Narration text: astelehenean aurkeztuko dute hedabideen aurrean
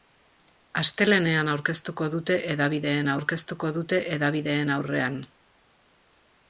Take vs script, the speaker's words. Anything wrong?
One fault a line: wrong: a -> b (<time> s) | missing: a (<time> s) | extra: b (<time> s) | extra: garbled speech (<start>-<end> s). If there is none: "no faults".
extra: aurkeztuko dute hedabideen (3.2 s)